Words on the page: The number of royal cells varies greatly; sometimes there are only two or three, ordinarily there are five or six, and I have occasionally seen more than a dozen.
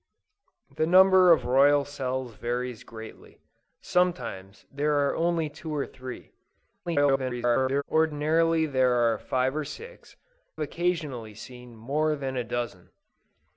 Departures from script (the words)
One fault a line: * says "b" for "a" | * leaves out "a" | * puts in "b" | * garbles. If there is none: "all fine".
* garbles
* leaves out "and I have"